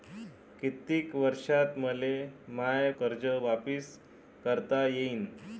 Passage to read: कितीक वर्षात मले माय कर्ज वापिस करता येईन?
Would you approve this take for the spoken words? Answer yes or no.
yes